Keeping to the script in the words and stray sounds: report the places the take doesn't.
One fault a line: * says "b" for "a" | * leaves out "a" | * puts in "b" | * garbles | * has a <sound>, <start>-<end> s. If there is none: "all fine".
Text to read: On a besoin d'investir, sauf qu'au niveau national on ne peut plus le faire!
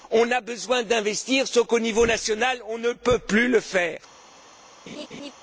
* has a laugh, 4.9-5.3 s